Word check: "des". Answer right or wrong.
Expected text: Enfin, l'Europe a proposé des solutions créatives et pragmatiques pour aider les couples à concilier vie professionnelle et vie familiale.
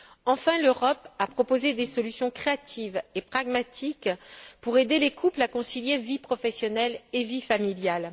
right